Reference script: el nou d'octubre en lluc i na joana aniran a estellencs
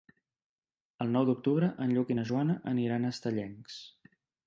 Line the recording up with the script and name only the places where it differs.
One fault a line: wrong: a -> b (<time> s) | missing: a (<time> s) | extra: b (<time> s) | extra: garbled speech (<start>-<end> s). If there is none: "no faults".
no faults